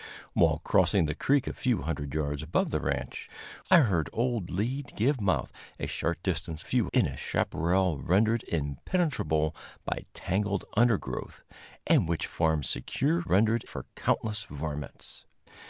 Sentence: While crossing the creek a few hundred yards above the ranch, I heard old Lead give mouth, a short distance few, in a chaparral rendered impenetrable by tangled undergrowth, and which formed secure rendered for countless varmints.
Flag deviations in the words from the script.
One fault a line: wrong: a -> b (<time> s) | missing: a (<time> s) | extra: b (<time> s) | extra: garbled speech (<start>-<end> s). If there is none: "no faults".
no faults